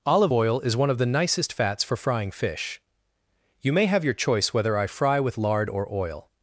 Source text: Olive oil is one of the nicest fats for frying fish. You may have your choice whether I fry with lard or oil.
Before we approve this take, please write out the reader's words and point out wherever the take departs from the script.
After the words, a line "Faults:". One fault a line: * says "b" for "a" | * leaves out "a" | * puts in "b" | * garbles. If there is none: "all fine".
Olive oil is one of the nicest fats for frying fish. You may have your choice whether I fry with lard or oil.
Faults:
all fine